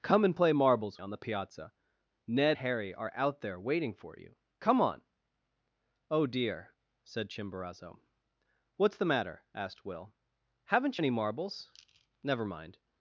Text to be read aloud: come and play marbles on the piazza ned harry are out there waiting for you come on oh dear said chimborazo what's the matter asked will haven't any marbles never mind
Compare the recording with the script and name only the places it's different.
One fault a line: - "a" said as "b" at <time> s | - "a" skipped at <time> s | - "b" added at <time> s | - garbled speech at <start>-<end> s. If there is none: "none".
none